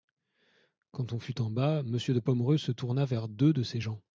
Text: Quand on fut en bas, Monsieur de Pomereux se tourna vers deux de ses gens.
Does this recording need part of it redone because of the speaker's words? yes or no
no